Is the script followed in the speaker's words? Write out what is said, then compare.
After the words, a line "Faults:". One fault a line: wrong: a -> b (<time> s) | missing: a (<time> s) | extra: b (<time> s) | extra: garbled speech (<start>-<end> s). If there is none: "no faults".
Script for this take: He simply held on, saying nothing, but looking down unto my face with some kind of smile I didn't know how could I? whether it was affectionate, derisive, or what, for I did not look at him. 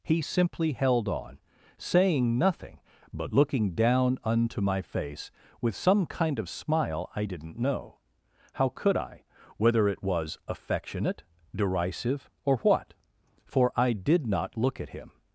He simply held on, saying nothing, but looking down unto my face with some kind of smile I didn't know how could I? whether it was affectionate, derisive, or what, for I did not look at him.
Faults:
no faults